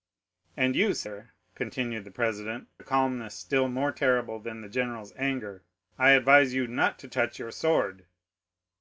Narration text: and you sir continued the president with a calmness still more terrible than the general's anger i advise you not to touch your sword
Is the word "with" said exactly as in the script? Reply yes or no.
no